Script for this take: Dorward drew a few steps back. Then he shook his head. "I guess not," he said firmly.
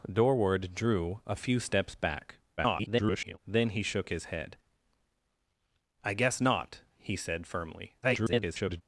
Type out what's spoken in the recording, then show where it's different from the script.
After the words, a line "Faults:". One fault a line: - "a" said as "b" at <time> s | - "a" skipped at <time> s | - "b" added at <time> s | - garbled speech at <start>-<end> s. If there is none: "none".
Dorward drew a few steps back. [garbled] Then he shook his head. "I guess not," he said firmly. [garbled]
Faults:
- garbled speech at 2.6-3.4 s
- garbled speech at 8.0-8.8 s